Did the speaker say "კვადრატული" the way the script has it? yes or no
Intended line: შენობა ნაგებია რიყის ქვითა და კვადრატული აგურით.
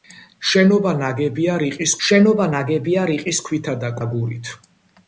no